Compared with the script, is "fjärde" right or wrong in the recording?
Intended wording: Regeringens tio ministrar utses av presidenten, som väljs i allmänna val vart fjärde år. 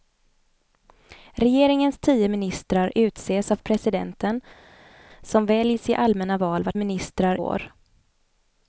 wrong